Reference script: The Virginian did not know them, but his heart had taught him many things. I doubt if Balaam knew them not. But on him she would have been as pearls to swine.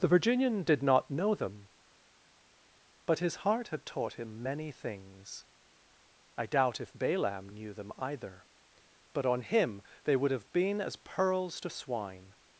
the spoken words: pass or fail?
fail